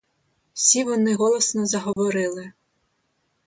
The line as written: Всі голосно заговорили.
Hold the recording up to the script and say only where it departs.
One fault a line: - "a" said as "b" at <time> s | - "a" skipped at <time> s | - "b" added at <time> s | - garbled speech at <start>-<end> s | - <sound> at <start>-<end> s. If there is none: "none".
- "вони" added at 0.8 s
- dropout at 1.9-2.0 s